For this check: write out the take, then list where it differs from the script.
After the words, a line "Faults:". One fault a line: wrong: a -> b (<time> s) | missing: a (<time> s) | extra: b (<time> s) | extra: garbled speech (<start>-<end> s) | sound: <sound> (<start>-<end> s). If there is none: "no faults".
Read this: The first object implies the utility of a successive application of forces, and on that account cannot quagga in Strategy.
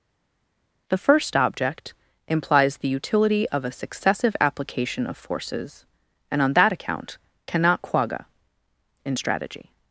The first object implies the utility of a successive application of forces, and on that account cannot quagga in Strategy.
Faults:
no faults